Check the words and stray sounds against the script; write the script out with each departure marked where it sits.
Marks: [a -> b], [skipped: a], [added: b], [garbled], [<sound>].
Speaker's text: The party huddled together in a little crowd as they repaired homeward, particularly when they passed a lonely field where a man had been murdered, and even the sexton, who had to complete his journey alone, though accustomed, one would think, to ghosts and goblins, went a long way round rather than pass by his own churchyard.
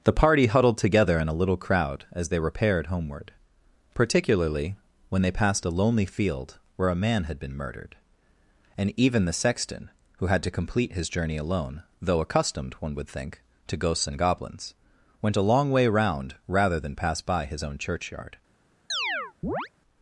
The party huddled together in a little crowd as they repaired homeward, particularly when they passed a lonely field where a man had been murdered, and even the sexton, who had to complete his journey alone, though accustomed, one would think, to ghosts and goblins, went a long way round rather than pass by his own churchyard. [chirp]